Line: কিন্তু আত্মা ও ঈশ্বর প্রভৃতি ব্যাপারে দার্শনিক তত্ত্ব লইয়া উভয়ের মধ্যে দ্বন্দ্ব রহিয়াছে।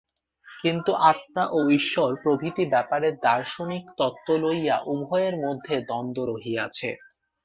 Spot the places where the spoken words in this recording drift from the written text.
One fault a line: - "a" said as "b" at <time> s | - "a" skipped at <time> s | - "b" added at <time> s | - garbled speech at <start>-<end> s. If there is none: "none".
none